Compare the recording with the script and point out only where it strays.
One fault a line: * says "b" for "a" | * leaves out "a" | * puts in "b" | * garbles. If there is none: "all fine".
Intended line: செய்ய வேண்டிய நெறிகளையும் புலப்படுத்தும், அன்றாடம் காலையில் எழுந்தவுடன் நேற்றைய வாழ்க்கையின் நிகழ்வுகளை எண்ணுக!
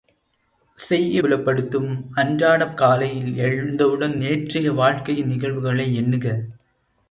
* leaves out "வேண்டிய நெறிகளையும்"